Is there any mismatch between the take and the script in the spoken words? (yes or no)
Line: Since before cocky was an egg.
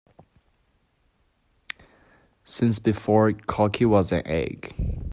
no